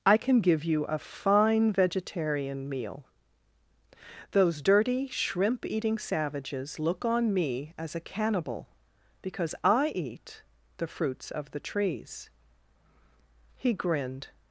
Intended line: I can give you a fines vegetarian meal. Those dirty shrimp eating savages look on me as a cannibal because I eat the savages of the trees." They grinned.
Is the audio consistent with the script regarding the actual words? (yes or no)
no